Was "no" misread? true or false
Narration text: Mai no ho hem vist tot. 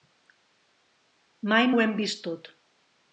true